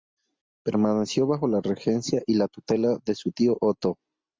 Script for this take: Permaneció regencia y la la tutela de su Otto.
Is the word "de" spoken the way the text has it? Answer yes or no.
yes